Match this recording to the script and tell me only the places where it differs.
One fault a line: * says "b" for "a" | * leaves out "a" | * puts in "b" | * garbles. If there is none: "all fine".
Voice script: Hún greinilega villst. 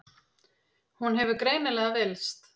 * puts in "hefur"